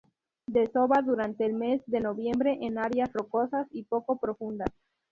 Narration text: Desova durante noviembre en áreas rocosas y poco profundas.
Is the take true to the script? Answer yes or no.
no